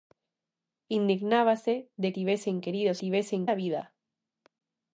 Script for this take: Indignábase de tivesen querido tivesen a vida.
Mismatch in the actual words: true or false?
false